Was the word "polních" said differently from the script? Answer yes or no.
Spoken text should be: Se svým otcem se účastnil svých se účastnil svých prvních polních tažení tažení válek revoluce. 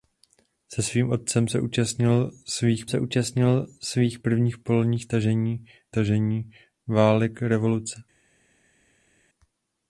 no